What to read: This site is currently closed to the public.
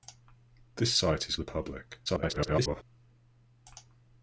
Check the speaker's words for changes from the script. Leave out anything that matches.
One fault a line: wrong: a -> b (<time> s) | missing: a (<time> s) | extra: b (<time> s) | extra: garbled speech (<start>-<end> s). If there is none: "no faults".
missing: currently closed to (1.4 s)
extra: garbled speech (2.1-2.8 s)